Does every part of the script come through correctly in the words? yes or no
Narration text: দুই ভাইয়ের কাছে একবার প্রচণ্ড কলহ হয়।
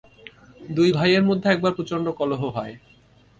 no